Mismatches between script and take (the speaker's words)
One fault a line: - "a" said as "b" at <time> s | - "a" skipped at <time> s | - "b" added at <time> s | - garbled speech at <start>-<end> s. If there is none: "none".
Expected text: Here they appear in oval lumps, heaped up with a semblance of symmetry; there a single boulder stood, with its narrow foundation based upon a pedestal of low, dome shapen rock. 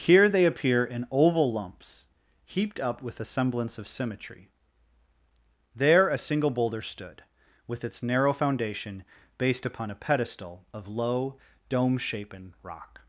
none